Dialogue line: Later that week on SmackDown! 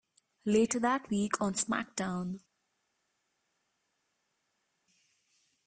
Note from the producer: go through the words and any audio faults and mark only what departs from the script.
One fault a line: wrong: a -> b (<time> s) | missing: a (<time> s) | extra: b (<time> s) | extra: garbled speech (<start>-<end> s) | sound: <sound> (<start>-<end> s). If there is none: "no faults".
no faults